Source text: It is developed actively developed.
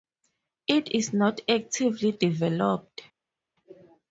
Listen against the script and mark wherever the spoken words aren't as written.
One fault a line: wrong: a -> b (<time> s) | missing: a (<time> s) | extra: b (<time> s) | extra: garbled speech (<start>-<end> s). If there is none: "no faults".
wrong: developed -> not (1.1 s)